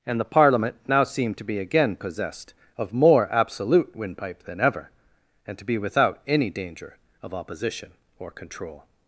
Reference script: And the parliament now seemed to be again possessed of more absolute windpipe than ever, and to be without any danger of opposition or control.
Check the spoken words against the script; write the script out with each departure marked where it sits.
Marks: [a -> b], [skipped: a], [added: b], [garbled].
And the parliament now seemed to be again possessed of more absolute windpipe than ever, and to be without any danger of opposition or control.